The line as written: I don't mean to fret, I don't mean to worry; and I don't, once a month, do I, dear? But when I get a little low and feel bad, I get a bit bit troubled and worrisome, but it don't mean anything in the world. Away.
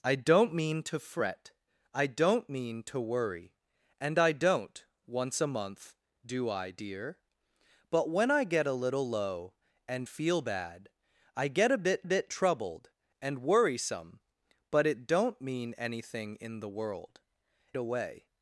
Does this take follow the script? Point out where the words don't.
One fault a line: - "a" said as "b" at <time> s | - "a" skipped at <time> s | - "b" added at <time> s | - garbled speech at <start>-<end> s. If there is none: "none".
none